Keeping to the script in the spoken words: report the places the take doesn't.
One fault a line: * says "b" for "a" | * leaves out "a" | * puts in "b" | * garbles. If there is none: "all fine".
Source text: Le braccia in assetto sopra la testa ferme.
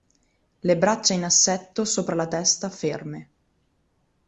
all fine